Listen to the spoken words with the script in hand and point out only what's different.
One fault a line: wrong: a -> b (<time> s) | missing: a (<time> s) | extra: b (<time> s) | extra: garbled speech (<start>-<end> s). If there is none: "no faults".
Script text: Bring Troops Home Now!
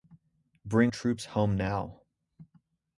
no faults